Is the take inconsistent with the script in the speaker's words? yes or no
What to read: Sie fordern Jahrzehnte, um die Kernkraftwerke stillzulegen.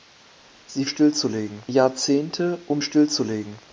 yes